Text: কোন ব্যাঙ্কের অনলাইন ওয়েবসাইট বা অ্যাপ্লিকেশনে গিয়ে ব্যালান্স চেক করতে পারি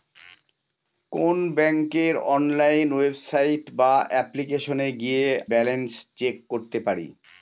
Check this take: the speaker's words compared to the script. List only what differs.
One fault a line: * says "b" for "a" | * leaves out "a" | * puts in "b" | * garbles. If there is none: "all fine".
all fine